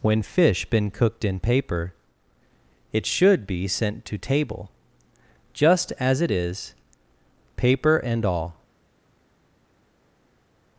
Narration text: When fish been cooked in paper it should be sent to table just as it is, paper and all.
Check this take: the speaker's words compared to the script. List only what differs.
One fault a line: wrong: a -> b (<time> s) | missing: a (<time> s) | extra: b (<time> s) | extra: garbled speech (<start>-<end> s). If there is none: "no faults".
no faults